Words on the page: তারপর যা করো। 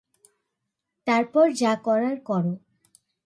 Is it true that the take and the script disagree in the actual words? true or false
true